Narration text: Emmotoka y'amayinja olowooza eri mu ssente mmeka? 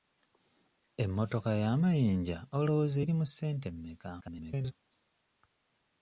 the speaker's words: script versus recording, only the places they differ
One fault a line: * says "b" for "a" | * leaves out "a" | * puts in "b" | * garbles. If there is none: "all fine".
* garbles